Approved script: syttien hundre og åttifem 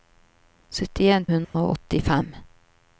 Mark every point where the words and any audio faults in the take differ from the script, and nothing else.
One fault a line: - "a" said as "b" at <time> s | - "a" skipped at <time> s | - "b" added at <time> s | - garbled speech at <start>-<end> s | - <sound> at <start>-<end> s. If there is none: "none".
- dropout at 1.4-1.5 s